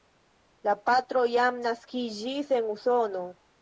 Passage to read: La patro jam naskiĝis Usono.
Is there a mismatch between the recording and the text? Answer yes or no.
yes